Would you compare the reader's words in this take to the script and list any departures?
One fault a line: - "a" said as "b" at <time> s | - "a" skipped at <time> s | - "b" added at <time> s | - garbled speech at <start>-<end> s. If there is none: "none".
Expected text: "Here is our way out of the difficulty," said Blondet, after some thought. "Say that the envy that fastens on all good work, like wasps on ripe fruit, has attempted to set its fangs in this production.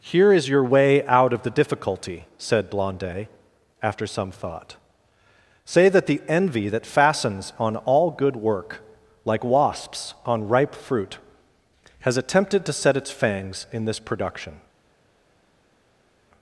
- "our" said as "your" at 0.5 s